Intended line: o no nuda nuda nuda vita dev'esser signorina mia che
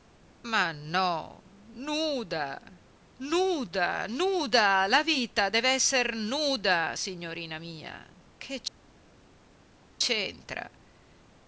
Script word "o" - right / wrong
wrong